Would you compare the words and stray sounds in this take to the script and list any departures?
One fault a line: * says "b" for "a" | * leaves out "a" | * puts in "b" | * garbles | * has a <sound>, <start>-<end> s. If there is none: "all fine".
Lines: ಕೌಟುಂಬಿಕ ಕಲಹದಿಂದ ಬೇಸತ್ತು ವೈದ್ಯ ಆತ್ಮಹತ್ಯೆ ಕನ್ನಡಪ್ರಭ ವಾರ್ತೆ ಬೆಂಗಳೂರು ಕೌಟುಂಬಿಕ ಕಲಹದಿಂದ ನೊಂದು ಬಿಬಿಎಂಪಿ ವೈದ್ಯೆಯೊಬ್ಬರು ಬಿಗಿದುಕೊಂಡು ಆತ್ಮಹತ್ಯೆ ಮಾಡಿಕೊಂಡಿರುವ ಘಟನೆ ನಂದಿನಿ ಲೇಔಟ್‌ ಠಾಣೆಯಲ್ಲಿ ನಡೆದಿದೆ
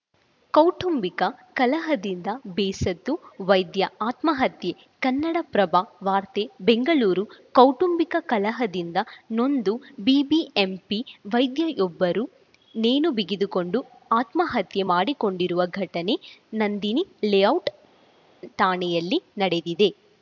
* puts in "ನೇಣು"